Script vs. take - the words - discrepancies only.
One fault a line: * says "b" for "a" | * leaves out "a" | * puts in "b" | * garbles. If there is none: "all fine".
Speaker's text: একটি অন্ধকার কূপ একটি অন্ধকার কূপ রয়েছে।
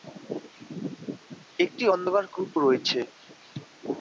* leaves out "একটি অন্ধকার কূপ"